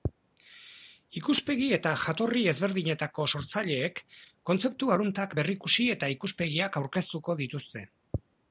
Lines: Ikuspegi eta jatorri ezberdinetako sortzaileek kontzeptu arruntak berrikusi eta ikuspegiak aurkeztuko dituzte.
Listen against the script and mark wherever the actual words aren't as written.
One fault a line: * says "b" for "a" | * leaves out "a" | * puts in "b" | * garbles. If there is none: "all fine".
all fine